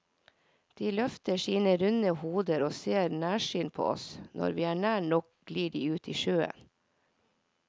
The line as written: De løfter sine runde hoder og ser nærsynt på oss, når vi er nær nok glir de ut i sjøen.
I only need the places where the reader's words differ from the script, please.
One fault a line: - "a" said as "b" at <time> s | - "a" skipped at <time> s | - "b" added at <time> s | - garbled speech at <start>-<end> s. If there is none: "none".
none